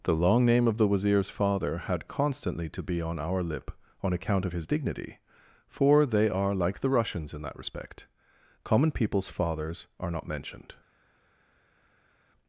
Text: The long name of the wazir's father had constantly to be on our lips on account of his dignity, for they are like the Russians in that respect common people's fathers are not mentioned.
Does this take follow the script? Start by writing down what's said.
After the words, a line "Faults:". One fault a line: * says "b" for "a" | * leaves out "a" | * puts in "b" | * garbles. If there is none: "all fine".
The long name of the wazir's father had constantly to be on our lip on account of his dignity, for they are like the Russians in that respect common people's fathers are not mentioned.
Faults:
* says "lip" for "lips"